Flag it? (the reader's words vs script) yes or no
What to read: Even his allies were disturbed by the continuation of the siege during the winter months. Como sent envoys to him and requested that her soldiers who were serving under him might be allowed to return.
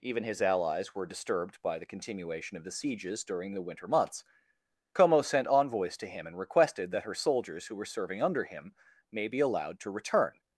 yes